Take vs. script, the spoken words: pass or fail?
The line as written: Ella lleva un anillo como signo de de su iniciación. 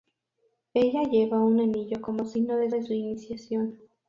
pass